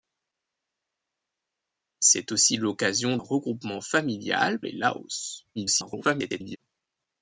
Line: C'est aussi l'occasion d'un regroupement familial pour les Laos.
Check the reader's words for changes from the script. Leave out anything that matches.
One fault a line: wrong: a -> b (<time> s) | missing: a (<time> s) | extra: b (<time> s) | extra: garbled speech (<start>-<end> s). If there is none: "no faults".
missing: d'un (3.2 s)
missing: pour (4.6 s)
extra: garbled speech (5.6-6.6 s)